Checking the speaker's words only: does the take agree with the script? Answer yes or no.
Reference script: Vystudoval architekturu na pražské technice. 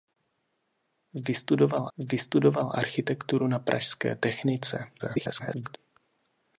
no